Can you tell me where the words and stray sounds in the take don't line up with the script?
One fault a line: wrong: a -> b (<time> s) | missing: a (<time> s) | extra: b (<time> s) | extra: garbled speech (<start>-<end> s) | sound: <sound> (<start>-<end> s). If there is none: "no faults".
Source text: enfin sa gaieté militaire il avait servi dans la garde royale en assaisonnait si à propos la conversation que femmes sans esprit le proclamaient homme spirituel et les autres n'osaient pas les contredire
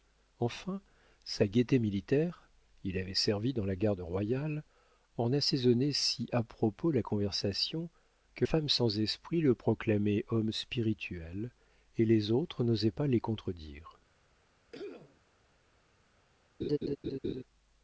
sound: cough (14.7-15.2 s)
sound: laugh (16.6-17.4 s)